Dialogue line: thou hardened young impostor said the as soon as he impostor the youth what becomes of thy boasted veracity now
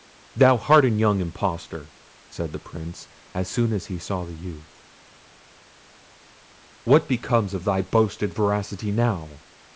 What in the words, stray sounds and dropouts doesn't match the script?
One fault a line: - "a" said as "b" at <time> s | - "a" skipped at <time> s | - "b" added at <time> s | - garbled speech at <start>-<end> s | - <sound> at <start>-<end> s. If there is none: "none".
- "prince" added at 2.6 s
- "impostor" said as "saw" at 4.0 s